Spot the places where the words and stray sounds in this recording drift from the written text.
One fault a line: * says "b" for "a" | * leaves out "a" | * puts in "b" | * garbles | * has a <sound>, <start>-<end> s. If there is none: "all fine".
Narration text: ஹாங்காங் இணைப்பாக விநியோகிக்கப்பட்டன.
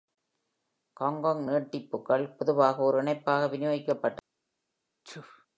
* puts in "நீட்டிப்புகள் பொதுவாக ஒரு"
* has a sneeze, 5.0-5.5 s